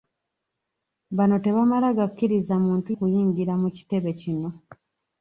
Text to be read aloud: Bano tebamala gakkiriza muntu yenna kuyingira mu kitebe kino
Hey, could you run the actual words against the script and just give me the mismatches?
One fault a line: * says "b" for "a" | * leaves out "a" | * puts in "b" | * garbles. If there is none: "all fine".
* leaves out "yenna"